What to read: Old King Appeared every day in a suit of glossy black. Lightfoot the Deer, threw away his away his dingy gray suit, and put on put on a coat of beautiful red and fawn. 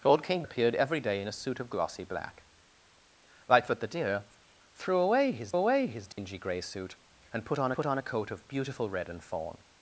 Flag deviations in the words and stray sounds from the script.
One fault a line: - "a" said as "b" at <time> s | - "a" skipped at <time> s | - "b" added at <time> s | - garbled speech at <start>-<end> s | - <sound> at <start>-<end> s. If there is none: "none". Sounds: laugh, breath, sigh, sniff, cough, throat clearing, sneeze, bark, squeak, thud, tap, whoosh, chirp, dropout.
- dropout at 6.1-6.2 s